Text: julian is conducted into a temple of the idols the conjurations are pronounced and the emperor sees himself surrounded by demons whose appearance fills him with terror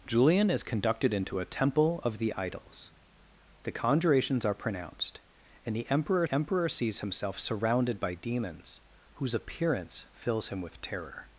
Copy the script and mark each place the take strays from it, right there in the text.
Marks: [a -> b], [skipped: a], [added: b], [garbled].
julian is conducted into a temple of the idols the conjurations are pronounced and the emperor [added: emperor] sees himself surrounded by demons whose appearance fills him with terror